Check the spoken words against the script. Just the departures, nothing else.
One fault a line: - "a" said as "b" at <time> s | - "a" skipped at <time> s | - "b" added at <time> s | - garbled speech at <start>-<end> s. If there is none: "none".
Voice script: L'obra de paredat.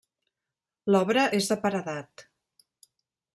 - "és" added at 1.4 s